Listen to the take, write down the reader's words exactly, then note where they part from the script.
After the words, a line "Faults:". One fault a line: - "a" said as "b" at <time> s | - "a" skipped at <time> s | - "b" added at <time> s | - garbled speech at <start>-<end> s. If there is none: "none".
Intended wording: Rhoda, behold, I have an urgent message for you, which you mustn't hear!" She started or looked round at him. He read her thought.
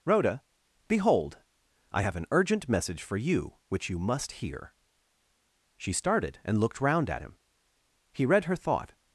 Rhoda, behold, I have an urgent message for you, which you must hear!" She started and looked round at him. He read her thought.
Faults:
- "mustn't" said as "must" at 4.0 s
- "or" said as "and" at 6.4 s